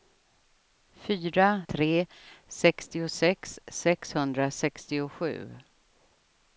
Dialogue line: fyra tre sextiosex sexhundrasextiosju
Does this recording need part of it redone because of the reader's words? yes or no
no